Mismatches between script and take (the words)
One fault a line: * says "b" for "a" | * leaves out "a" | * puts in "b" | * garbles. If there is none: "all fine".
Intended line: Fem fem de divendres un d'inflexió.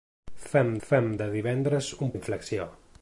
all fine